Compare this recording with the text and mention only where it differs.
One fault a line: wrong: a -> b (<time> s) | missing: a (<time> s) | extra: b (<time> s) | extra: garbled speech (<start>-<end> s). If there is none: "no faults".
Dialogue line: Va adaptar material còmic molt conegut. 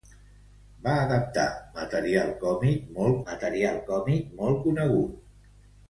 extra: material còmic molt (3.3 s)